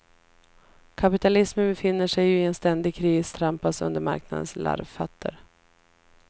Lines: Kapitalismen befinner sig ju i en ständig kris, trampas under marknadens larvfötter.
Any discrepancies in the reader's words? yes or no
no